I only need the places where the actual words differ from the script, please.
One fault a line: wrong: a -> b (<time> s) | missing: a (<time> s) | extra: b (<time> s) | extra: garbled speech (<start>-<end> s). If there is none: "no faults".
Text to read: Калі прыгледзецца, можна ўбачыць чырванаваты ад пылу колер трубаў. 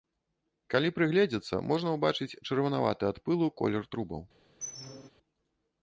no faults